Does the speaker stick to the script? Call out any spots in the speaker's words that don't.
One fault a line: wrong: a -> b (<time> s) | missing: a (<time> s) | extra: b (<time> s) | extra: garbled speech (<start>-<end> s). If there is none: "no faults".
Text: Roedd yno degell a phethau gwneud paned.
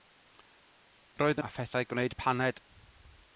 missing: yno degell (1.4 s)